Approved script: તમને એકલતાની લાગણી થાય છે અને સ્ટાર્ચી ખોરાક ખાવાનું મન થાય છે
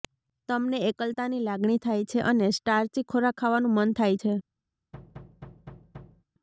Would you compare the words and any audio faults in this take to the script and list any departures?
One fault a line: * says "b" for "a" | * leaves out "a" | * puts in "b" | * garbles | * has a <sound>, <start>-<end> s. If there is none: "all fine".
* has a thud, 4.9-6.2 s